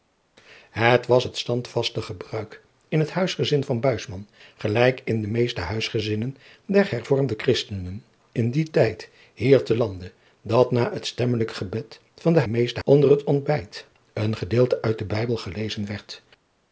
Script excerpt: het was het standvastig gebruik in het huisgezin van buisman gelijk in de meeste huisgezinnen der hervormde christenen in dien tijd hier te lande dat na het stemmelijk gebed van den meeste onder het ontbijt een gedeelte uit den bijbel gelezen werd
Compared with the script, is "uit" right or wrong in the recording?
right